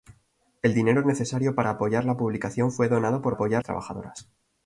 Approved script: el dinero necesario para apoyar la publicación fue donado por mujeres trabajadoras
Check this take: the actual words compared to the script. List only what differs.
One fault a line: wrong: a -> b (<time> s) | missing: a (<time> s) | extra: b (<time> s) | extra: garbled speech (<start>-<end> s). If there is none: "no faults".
wrong: mujeres -> apoyar (3.3 s)